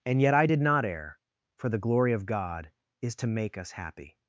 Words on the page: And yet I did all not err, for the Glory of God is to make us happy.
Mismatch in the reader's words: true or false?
true